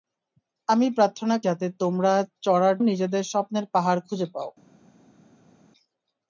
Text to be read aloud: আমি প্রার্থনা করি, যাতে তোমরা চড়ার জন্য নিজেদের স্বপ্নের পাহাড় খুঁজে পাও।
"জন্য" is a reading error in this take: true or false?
true